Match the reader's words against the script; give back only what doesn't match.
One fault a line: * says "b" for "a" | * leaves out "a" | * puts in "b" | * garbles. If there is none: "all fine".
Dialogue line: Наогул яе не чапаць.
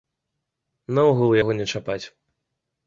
* says "яго" for "яе"